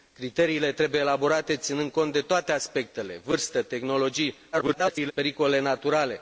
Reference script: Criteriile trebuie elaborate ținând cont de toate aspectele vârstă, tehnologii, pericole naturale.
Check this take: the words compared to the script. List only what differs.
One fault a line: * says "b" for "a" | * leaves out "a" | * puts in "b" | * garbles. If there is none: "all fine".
* garbles